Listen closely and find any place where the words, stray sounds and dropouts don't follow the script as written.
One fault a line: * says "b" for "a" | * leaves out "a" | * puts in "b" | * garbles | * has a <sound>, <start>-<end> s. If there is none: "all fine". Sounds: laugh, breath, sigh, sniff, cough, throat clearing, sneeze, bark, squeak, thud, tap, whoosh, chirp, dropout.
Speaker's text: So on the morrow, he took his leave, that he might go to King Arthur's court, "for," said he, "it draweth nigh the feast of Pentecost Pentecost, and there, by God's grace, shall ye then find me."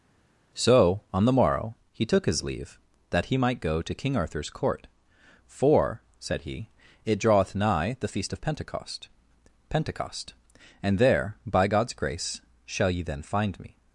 all fine